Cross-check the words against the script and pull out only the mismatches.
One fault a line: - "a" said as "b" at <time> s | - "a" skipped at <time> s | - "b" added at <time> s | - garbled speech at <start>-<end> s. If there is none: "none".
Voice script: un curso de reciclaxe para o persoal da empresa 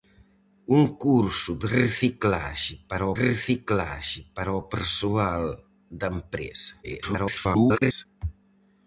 - "reciclaxe para" added at 3.2 s
- garbled speech at 6.8-8.1 s